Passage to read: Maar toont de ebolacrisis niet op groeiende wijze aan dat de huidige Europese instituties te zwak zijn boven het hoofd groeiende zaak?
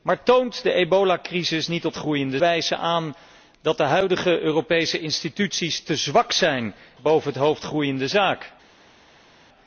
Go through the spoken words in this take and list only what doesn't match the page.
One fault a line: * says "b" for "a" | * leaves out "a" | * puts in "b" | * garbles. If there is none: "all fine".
all fine